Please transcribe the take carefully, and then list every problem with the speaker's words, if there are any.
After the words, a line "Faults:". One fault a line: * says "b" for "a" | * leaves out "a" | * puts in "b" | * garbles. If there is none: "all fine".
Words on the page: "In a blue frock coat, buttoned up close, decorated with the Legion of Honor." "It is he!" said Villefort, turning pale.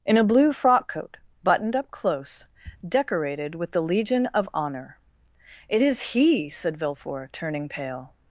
"In a blue frock coat, buttoned up close, decorated with the Legion of Honor." "It is he!" said Villefort, turning pale.
Faults:
all fine